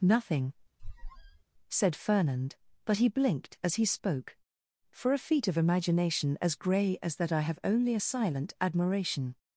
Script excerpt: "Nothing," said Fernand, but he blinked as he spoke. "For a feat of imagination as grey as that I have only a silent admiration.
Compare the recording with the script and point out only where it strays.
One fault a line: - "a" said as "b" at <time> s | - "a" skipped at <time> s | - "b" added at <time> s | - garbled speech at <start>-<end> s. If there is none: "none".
none